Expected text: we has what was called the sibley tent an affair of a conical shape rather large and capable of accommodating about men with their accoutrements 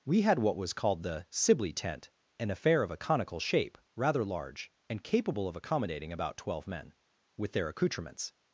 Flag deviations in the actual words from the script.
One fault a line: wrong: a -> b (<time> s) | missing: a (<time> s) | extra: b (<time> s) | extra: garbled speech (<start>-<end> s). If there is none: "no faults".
wrong: has -> had (0.2 s)
extra: twelve (6.4 s)